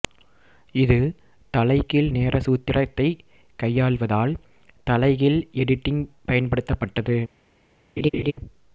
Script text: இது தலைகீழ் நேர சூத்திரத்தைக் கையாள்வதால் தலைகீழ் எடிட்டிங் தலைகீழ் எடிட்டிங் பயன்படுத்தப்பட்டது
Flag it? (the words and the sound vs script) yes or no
yes